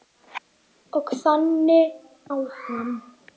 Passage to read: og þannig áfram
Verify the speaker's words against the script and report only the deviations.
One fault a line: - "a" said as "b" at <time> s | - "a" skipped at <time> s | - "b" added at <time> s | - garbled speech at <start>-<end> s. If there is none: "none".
none